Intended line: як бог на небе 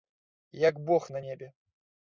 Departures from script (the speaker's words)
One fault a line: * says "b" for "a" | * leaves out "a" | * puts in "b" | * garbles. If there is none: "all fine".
all fine